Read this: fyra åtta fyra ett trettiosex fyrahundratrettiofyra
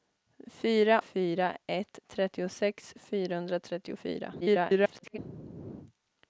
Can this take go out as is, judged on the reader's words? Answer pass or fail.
fail